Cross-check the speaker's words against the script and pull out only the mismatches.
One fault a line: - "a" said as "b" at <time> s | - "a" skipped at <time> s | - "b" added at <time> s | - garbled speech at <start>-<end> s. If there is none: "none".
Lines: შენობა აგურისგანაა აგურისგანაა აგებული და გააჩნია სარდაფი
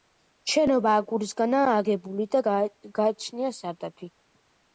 - "აგურისგანაა" skipped at 1.8 s